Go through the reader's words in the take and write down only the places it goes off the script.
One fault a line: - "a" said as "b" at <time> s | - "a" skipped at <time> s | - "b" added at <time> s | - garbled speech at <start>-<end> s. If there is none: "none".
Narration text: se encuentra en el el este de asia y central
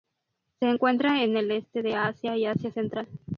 - "el" skipped at 1.5 s
- "asia" added at 2.5 s